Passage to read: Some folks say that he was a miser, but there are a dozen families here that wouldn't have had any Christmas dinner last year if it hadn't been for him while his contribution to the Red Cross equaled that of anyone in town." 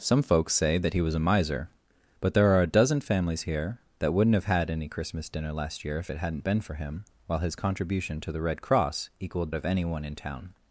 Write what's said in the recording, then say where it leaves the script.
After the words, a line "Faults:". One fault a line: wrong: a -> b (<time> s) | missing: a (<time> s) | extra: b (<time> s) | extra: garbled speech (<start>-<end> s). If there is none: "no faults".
Some folks say that he was a miser, but there are a dozen families here that wouldn't have had any Christmas dinner last year if it hadn't been for him while his contribution to the Red Cross equaled of anyone in town."
Faults:
missing: that (9.5 s)